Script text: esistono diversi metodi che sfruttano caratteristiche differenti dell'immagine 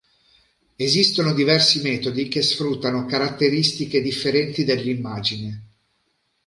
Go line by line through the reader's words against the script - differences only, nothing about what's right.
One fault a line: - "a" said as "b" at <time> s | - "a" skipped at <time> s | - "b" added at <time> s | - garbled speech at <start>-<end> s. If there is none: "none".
none